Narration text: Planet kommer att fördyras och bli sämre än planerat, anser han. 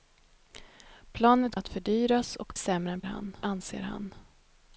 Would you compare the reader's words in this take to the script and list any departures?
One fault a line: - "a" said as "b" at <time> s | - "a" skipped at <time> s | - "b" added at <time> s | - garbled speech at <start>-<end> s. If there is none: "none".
- "kommer" skipped at 1.6 s
- "bli" skipped at 2.5 s
- "planerat" said as "han" at 3.0 s